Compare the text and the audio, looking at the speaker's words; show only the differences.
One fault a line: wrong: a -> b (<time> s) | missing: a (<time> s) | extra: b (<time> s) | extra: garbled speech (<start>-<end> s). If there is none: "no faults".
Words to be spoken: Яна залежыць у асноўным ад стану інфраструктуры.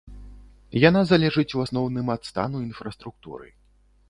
no faults